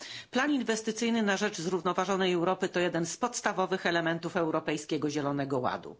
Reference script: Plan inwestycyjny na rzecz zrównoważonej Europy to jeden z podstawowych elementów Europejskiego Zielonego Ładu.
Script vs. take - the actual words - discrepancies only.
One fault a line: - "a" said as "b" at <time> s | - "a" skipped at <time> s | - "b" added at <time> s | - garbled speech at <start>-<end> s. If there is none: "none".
none